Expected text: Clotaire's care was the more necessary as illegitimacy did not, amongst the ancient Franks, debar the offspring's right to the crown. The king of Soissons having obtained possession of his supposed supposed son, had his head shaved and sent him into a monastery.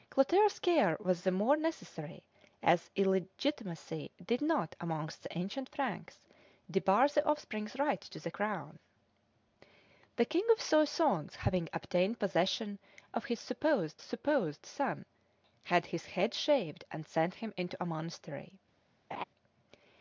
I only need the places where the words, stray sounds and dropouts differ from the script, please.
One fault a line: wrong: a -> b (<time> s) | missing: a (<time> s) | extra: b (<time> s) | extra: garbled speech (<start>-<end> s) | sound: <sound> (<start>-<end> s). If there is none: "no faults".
sound: laugh (19.1-19.2 s)